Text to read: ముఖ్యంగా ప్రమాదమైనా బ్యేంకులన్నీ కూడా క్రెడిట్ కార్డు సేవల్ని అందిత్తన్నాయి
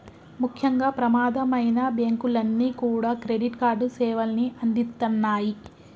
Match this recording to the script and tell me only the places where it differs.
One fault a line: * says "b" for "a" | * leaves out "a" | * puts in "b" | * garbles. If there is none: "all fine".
all fine